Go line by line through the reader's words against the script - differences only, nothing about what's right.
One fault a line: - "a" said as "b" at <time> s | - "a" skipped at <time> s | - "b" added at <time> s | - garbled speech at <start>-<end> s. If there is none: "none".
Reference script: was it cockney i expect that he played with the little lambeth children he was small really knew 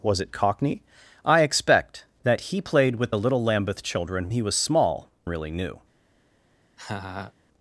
none